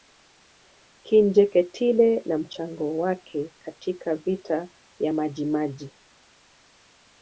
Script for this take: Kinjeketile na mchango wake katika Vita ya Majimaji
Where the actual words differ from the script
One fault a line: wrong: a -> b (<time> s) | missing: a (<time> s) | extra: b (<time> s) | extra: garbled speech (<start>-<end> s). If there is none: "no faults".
no faults